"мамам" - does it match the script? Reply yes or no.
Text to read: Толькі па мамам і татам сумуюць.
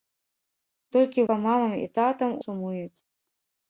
yes